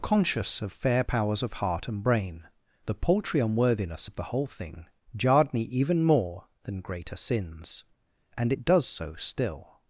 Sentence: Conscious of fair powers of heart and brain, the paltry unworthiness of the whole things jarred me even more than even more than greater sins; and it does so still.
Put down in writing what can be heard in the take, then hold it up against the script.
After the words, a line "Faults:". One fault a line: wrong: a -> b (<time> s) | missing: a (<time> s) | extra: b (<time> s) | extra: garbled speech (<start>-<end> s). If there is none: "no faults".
Conscious of fair powers of heart and brain, the paltry unworthiness of the whole thing jarred me even more than greater sins; and it does so still.
Faults:
wrong: things -> thing (4.5 s)
missing: even more than (6.8 s)